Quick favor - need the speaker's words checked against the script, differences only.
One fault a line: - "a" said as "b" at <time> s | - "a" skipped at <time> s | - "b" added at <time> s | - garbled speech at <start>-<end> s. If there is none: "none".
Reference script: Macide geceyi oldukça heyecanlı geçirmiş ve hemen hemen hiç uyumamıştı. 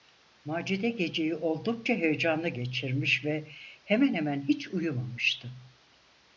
none